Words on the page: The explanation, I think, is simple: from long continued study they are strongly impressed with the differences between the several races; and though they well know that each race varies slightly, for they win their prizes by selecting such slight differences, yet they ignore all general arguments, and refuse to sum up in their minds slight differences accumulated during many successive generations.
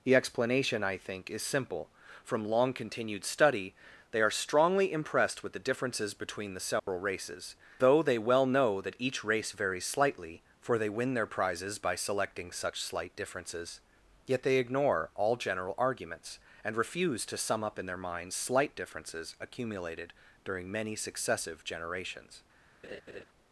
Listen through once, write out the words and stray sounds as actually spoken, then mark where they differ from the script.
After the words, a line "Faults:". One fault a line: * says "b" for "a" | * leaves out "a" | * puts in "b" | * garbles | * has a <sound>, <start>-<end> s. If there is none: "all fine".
The explanation, I think, is simple: from long continued study they are strongly impressed with the differences between the several races; though they well know that each race varies slightly, for they win their prizes by selecting such slight differences, yet they ignore all general arguments, and refuse to sum up in their minds slight differences accumulated during many successive generations.
Faults:
* has a dropout, 6.8-6.9 s
* leaves out "and"
* has a laugh, 22.8-23.2 s